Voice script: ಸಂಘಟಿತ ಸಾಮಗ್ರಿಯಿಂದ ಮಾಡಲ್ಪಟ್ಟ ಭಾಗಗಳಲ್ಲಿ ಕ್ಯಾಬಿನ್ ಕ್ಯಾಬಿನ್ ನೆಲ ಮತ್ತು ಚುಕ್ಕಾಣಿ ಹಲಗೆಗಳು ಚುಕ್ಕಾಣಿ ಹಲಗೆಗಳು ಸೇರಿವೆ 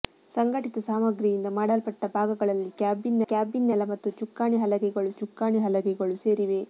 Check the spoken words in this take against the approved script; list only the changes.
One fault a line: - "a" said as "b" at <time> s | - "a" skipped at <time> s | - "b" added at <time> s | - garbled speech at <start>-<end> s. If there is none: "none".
none